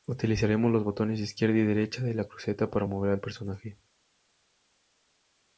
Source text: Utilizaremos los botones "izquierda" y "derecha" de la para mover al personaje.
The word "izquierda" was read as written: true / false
true